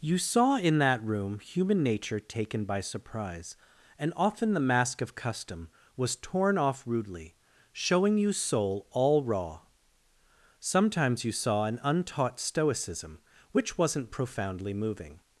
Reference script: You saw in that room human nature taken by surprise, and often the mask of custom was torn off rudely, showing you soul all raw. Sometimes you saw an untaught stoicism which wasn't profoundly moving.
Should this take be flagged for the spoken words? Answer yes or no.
no